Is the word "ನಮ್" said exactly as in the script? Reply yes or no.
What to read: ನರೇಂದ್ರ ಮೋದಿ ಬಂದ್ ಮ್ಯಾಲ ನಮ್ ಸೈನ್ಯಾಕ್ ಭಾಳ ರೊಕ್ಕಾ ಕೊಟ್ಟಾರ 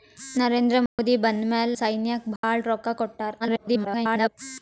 no